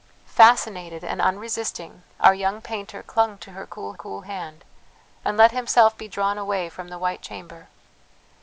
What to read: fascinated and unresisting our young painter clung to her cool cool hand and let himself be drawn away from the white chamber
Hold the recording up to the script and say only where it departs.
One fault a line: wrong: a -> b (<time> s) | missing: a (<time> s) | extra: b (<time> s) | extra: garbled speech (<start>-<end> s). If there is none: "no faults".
no faults